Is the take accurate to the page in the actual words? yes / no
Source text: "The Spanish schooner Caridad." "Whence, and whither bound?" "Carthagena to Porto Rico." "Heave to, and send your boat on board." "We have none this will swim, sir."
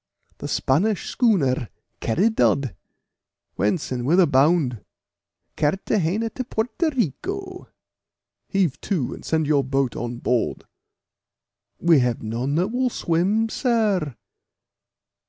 no